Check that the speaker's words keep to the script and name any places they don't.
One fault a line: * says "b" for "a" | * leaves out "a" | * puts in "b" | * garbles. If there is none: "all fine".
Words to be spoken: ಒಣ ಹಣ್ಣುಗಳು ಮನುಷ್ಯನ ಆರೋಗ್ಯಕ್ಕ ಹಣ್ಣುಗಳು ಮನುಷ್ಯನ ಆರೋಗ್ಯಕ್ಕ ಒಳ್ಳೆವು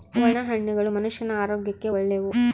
* leaves out "ಹಣ್ಣುಗಳು ಮನುಷ್ಯನ ಆರೋಗ್ಯಕ್ಕ"